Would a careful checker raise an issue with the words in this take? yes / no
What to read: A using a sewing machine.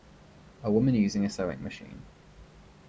yes